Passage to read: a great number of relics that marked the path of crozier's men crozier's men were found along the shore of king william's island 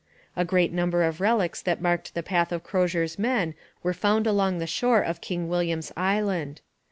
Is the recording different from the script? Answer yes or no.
yes